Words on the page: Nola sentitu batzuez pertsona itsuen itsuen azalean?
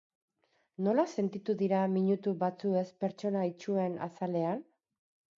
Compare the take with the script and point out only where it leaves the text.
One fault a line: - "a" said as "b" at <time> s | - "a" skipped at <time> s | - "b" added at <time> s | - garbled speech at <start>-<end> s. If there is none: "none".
- "dira minutu" added at 1.6 s
- "itsuen" skipped at 4.0 s